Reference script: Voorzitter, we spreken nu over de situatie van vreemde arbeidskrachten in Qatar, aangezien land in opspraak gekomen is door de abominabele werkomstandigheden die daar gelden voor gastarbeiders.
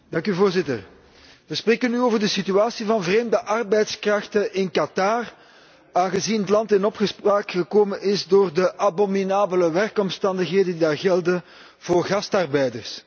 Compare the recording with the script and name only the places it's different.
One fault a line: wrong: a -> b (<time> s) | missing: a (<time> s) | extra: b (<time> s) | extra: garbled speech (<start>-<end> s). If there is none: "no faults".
no faults